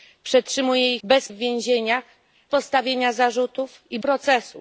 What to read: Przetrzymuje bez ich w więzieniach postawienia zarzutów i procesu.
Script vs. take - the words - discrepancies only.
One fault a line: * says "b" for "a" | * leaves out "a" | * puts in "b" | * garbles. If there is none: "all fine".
all fine